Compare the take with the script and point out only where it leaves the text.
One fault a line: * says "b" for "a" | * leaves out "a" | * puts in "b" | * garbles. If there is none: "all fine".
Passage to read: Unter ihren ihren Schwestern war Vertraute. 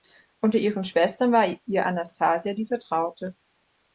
* leaves out "ihren"
* puts in "ihr Anastasia die"